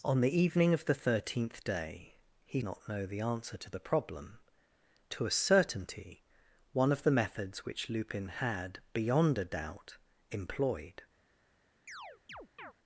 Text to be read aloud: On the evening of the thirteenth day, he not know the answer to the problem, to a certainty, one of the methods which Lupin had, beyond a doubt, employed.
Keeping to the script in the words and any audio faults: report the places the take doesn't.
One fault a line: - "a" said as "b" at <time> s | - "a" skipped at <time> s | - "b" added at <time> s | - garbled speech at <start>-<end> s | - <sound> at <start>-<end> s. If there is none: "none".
- chirp at 11.9-12.7 s